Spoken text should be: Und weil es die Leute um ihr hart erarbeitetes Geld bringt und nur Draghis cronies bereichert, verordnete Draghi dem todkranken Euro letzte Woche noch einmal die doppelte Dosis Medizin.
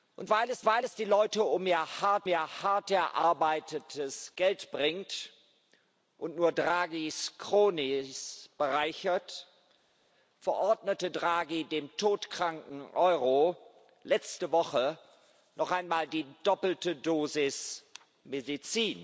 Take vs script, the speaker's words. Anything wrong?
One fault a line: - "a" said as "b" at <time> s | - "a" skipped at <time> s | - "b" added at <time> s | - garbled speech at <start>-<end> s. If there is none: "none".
- "weil es" added at 0.6 s
- "ihr hart" added at 2.3 s